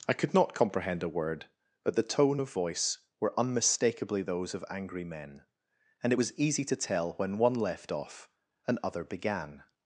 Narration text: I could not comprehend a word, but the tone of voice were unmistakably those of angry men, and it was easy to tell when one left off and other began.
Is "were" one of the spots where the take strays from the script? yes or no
no